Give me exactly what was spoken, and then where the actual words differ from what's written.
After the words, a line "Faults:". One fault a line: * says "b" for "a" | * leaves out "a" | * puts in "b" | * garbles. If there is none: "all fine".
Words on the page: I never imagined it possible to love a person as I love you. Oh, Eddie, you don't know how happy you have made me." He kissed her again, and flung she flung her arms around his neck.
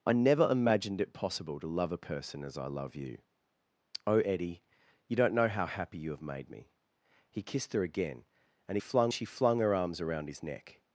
I never imagined it possible to love a person as I love you. Oh, Eddie, you don't know how happy you have made me." He kissed her again, and flung she flung her arms around his neck.
Faults:
all fine